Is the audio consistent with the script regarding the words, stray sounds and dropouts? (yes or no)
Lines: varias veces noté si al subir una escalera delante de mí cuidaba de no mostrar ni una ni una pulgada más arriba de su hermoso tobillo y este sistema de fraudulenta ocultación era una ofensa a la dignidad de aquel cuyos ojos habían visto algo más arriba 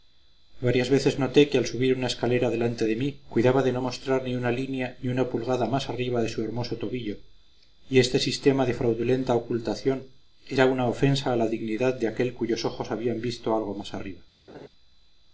no